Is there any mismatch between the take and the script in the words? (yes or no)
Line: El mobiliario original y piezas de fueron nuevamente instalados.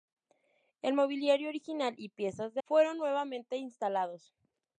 no